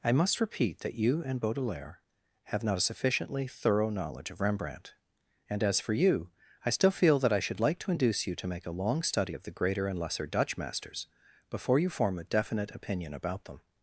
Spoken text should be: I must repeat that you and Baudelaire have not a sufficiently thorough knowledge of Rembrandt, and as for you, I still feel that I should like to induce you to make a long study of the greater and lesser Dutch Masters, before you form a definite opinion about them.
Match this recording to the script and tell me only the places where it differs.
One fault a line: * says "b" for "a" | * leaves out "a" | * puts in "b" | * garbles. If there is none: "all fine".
all fine